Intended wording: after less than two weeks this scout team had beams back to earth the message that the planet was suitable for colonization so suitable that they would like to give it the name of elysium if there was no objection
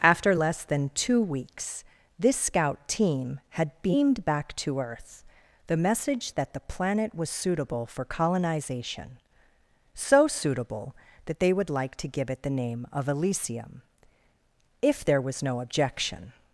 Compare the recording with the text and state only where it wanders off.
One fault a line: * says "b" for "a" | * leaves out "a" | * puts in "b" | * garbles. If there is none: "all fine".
* says "beamed" for "beams"